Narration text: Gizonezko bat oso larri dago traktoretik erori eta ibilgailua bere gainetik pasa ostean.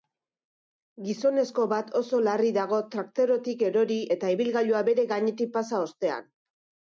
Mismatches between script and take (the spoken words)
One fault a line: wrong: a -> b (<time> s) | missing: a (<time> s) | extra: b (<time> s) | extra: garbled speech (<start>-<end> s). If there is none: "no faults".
no faults